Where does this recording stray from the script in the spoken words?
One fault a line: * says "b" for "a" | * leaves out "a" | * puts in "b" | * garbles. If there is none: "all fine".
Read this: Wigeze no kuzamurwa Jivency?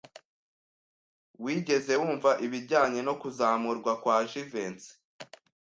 * puts in "wumva ibijyanye"
* puts in "kwa"